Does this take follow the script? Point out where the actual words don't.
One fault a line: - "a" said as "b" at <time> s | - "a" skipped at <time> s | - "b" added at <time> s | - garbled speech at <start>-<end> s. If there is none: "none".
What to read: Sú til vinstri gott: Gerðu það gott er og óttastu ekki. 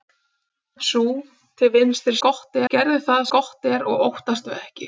none